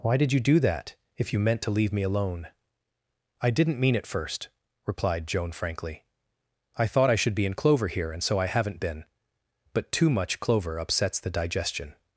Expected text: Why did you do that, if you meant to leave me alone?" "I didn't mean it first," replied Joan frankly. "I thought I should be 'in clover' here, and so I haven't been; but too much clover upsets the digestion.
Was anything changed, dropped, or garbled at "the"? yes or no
no